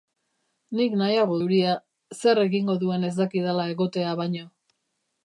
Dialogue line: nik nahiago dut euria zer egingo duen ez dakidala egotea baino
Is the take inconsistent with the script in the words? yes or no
yes